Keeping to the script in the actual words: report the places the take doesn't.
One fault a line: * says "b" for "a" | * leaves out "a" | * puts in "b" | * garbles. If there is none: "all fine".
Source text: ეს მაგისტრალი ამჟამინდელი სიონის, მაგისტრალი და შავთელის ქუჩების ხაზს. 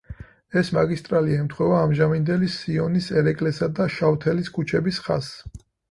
* puts in "ემთხვევა"
* says "ერეკლესა" for "მაგისტრალი"